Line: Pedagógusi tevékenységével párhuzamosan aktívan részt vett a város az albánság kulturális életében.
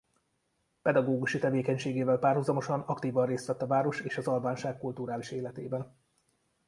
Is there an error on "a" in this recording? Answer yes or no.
no